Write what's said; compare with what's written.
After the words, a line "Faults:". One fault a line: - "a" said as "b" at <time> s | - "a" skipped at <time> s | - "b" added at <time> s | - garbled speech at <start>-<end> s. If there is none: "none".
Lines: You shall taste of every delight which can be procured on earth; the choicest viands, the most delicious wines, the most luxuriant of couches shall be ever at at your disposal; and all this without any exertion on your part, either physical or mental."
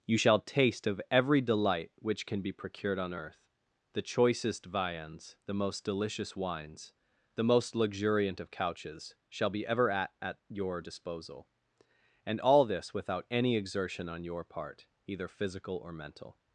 You shall taste of every delight which can be procured on earth; the choicest viands, the most delicious wines, the most luxuriant of couches shall be ever at at your disposal; and all this without any exertion on your part, either physical or mental."
Faults:
none